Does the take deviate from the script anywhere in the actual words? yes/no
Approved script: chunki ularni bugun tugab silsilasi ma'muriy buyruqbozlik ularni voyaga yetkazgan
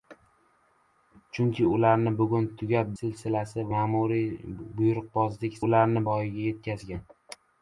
no